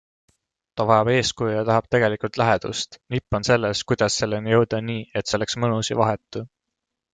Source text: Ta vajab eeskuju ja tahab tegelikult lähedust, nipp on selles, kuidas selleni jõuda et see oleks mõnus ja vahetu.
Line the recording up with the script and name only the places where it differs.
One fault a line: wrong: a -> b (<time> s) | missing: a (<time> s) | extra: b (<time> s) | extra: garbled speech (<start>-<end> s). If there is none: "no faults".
extra: nii (4.9 s)